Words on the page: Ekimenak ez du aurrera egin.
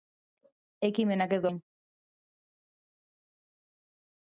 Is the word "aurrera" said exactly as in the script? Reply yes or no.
no